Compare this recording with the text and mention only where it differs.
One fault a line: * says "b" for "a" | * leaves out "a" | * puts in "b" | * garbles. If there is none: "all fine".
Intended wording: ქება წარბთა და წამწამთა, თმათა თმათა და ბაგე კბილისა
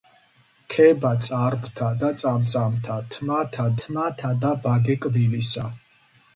all fine